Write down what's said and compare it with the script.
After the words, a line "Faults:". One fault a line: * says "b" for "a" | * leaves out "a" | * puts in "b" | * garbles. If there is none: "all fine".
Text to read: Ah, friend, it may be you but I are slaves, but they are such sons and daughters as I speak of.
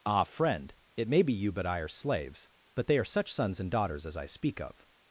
Ah, friend, it may be you but I are slaves, but they are such sons and daughters as I speak of.
Faults:
all fine